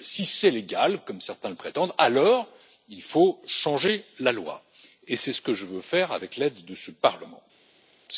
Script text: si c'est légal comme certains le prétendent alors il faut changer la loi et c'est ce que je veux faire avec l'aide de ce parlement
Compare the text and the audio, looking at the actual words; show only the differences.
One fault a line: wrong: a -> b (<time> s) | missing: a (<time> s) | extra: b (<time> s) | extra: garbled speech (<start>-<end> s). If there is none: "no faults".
no faults